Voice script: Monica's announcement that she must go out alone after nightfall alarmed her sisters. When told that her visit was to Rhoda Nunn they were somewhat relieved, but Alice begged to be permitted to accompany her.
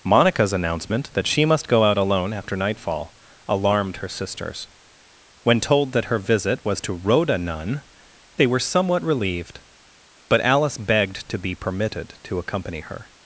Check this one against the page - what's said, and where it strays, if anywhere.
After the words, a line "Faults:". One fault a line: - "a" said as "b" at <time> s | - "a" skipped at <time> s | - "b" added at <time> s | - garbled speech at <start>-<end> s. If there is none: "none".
Monica's announcement that she must go out alone after nightfall alarmed her sisters. When told that her visit was to Rhoda Nunn they were somewhat relieved, but Alice begged to be permitted to accompany her.
Faults:
none